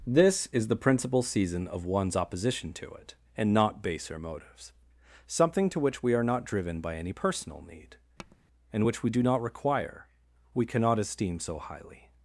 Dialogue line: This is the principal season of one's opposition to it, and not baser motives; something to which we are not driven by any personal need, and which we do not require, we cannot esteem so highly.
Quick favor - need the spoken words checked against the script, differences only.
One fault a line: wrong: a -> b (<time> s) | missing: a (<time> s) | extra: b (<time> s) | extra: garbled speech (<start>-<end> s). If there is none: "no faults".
no faults